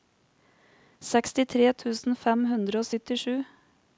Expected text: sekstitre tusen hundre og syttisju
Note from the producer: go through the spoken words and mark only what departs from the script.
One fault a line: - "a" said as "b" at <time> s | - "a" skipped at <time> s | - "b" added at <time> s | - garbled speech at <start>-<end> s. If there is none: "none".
- "fem" added at 2.2 s